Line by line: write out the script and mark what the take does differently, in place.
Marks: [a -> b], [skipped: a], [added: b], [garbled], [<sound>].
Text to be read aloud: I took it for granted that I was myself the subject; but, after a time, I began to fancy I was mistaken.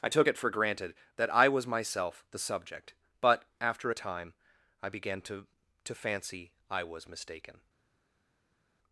I took it for granted that I was myself the subject; but, after a time, I began to [added: to] fancy I was mistaken.